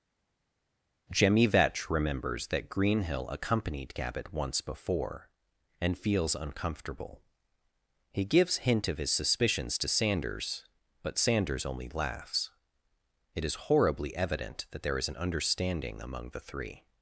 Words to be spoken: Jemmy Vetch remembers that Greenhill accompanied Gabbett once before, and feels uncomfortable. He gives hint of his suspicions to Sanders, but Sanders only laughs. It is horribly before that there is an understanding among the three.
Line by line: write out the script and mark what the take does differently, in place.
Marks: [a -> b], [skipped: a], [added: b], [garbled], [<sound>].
Jemmy Vetch remembers that Greenhill accompanied Gabbett once before, and feels uncomfortable. He gives hint of his suspicions to Sanders, but Sanders only laughs. It is horribly [before -> evident] that there is an understanding among the three.